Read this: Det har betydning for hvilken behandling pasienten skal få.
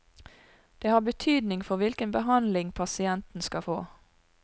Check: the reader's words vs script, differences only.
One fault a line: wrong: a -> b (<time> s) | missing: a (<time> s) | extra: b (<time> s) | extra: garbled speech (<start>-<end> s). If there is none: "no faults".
no faults